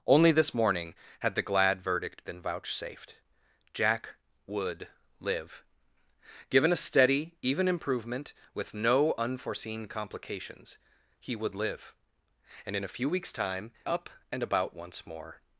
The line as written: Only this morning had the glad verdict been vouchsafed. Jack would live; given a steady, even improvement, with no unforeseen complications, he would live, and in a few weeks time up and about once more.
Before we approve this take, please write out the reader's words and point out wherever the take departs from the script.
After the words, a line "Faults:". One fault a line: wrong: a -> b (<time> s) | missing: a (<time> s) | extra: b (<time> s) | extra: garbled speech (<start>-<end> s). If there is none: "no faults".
Only this morning had the glad verdict been vouchsafed. Jack would live; given a steady, even improvement, with no unforeseen complications, he would live, and in a few weeks time up and about once more.
Faults:
no faults